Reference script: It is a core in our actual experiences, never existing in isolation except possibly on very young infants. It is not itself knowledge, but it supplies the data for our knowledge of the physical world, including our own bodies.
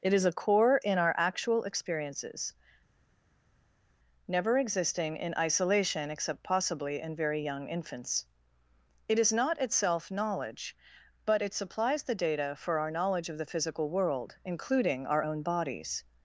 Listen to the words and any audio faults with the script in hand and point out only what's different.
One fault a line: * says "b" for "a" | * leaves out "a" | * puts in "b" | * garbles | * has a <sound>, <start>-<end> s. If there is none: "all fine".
* says "in" for "on"